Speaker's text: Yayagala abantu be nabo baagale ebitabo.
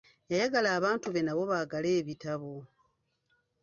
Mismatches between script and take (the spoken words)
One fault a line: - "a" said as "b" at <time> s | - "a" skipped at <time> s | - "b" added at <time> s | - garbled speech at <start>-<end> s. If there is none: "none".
none